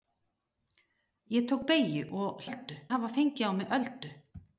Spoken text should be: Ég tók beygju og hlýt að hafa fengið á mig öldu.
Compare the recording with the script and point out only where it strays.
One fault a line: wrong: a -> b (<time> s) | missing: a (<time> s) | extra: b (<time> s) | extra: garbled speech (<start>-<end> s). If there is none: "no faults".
wrong: hlýt -> öldu (2.4 s)